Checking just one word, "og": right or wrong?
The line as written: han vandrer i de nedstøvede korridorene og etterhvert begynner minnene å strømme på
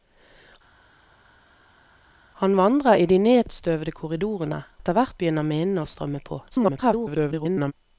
wrong